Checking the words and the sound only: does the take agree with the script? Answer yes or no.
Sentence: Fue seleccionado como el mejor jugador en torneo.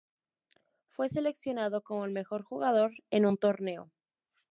no